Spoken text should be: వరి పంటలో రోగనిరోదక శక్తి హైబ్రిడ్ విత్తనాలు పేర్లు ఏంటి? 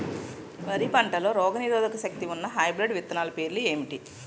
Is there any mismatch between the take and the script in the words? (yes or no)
yes